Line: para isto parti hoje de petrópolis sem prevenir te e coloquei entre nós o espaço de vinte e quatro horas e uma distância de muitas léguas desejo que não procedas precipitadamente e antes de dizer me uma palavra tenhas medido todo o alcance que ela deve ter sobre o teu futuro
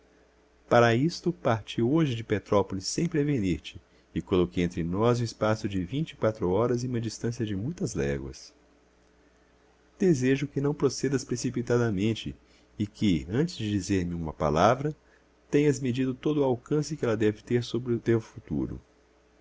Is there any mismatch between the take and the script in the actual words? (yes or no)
yes